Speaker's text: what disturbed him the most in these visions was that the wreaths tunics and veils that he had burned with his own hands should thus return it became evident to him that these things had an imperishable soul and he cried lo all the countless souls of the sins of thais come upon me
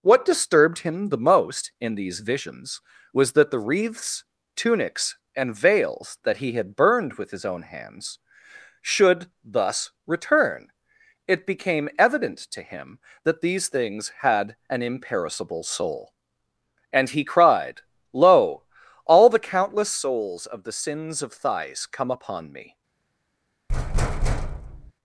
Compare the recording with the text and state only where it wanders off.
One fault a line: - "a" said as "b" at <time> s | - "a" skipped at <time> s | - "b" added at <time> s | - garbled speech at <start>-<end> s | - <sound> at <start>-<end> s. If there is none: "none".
- thud at 23.7-24.9 s